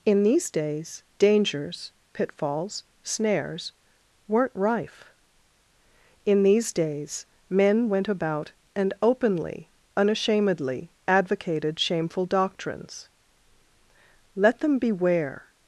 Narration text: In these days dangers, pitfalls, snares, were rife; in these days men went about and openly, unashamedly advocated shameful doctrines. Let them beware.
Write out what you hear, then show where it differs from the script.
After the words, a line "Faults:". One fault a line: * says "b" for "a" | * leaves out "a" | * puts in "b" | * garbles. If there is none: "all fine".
In these days dangers, pitfalls, snares, weren't rife; in these days men went about and openly, unashamedly advocated shameful doctrines. Let them beware.
Faults:
* says "weren't" for "were"